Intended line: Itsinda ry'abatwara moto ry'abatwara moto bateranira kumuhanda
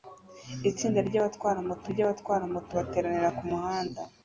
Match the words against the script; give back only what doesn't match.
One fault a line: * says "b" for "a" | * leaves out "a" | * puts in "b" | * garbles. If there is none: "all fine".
all fine